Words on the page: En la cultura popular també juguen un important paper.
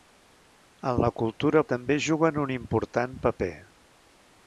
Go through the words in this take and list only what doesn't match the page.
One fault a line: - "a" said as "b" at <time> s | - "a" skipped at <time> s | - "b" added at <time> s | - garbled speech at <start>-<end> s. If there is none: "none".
- "popular" skipped at 1.6 s